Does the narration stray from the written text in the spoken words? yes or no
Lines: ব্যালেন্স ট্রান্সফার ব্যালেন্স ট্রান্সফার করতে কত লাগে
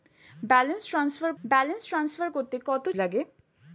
no